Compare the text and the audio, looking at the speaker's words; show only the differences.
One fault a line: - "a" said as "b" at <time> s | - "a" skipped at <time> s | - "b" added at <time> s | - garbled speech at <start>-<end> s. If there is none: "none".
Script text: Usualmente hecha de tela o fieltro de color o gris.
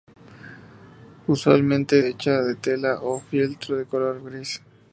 none